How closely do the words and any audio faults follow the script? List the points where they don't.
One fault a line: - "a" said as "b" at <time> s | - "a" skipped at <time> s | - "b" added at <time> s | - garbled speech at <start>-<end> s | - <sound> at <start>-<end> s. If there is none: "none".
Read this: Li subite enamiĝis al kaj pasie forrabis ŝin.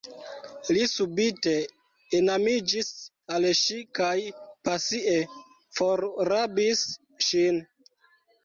- "ŝi" added at 3.6 s